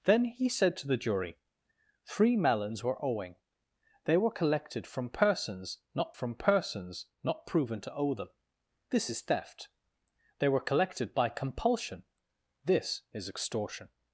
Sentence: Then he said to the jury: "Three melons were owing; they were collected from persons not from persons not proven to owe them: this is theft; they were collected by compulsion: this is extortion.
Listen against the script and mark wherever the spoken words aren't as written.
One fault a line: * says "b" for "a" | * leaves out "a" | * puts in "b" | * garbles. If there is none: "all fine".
all fine